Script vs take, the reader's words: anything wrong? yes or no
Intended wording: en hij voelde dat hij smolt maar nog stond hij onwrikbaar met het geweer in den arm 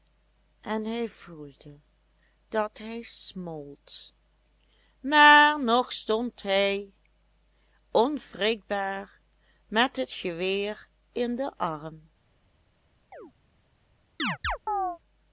no